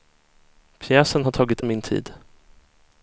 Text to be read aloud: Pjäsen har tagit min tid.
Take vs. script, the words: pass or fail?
pass